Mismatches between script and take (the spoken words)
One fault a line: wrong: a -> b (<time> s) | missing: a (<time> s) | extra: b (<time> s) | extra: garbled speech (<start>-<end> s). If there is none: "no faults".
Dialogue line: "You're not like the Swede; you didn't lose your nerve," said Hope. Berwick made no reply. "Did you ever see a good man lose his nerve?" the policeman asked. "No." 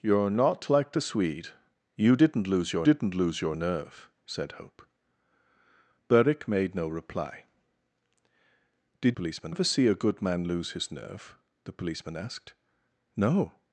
extra: didn't lose your (2.8 s)
wrong: you -> policeman (9.1 s)